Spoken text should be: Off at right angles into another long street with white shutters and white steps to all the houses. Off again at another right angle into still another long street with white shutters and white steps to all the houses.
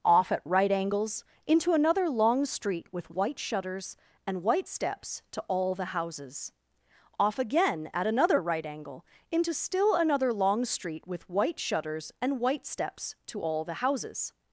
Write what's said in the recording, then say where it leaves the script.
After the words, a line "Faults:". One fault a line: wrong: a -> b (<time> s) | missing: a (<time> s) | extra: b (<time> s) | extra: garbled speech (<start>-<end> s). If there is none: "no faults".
Off at right angles into another long street with white shutters and white steps to all the houses. Off again at another right angle into still another long street with white shutters and white steps to all the houses.
Faults:
no faults